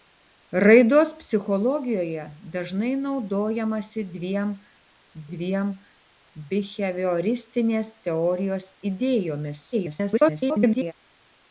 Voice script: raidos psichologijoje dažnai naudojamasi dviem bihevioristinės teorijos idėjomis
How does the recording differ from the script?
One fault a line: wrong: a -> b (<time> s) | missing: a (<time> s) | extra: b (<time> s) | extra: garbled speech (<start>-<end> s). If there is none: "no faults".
extra: dviem (5.3 s)
extra: garbled speech (9.7-10.9 s)